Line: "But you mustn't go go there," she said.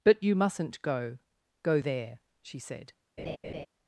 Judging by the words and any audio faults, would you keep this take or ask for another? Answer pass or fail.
fail